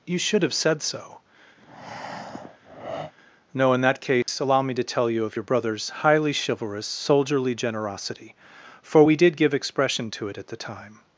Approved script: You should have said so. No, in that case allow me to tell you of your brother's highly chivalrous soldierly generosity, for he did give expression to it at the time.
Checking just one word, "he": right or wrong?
wrong